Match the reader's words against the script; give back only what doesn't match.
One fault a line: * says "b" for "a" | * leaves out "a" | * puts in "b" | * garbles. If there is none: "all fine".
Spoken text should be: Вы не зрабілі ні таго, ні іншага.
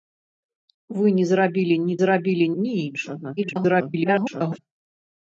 * says "зрабілі" for "таго"
* garbles